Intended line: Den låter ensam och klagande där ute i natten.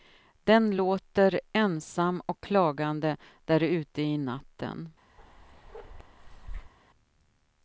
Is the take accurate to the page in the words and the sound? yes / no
no